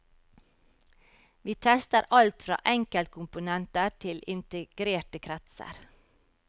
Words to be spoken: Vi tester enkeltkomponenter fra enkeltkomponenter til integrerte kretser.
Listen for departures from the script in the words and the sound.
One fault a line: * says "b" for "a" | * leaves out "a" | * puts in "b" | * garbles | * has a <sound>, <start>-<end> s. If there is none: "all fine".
* says "alt" for "enkeltkomponenter"